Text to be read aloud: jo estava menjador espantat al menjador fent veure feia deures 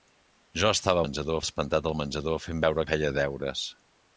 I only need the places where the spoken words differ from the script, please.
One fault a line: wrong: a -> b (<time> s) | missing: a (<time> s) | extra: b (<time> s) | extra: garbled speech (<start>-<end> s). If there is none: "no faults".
no faults